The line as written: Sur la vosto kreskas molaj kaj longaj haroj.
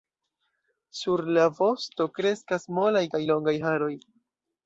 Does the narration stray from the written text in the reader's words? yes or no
no